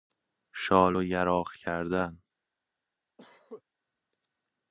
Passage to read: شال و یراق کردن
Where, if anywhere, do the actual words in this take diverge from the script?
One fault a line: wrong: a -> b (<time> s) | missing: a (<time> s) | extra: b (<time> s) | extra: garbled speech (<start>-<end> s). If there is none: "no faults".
no faults